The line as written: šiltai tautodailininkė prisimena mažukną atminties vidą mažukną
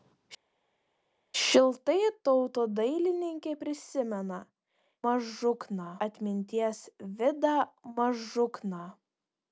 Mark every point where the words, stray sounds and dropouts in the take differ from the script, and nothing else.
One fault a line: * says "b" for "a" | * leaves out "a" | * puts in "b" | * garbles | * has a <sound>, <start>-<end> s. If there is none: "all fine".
all fine